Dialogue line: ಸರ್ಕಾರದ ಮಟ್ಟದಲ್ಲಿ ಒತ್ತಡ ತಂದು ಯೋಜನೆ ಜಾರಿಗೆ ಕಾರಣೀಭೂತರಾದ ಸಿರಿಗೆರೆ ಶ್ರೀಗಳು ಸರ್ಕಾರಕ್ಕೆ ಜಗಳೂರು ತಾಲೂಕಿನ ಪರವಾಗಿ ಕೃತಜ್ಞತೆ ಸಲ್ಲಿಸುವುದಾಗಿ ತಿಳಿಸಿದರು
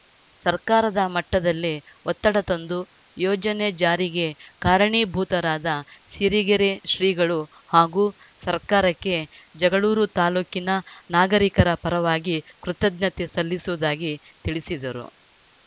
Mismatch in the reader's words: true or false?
true